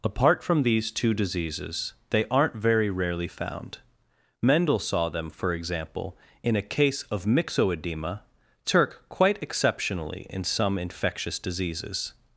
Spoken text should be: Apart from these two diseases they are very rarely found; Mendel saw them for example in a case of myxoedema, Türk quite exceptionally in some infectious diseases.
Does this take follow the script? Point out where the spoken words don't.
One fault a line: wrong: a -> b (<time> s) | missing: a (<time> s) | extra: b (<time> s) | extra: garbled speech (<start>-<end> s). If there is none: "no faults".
wrong: are -> aren't (2.3 s)